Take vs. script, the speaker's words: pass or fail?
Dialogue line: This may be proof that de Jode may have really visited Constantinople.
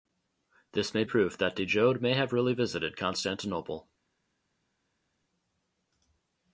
fail